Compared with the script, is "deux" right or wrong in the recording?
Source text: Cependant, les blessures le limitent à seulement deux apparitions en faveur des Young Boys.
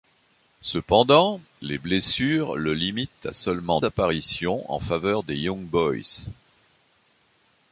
wrong